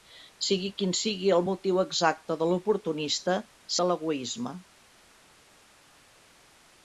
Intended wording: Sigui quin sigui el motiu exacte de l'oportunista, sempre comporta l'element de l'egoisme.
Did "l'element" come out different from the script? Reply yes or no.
yes